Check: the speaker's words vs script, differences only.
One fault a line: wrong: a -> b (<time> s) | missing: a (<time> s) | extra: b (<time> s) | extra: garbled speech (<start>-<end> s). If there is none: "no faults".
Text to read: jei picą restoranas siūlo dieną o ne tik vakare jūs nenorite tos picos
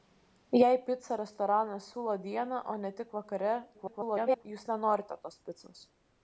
extra: garbled speech (3.7-4.5 s)